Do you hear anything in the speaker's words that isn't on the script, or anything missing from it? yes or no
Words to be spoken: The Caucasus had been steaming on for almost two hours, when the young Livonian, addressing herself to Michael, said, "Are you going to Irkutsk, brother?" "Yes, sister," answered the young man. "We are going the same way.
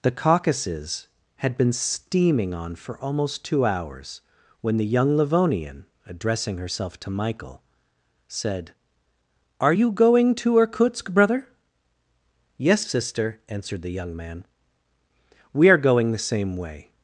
no